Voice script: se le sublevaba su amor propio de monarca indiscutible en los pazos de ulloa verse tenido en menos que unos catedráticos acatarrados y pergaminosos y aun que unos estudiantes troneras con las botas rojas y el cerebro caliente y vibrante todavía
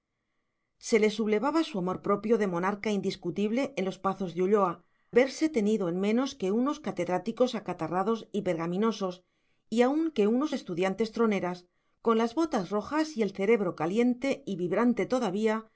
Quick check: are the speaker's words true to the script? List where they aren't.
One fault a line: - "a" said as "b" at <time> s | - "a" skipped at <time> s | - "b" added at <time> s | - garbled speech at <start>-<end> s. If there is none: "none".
none